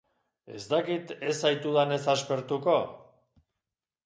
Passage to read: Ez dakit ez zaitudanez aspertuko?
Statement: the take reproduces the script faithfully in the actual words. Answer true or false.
true